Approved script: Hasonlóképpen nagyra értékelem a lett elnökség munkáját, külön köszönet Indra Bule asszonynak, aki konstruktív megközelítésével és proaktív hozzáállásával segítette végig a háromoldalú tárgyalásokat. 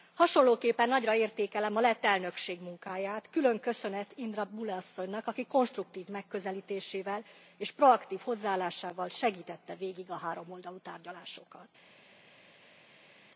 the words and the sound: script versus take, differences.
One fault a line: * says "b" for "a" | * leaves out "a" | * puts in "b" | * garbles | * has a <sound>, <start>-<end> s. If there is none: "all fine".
all fine